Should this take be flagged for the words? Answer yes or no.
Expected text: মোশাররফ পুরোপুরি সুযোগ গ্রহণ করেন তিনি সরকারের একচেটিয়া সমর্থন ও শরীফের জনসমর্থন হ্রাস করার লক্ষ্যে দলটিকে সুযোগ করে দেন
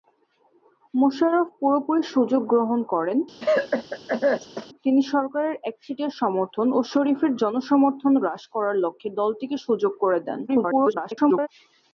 yes